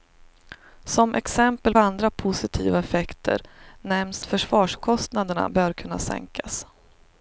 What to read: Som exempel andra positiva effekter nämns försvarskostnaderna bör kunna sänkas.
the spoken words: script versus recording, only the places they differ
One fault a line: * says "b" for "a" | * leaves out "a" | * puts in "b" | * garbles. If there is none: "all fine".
all fine